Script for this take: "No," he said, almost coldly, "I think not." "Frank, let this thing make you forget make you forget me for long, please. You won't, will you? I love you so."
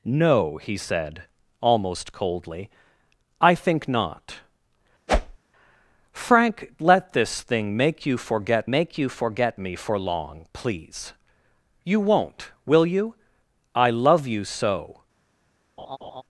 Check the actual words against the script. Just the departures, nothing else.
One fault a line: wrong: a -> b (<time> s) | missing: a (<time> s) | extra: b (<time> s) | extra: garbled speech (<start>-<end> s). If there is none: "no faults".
no faults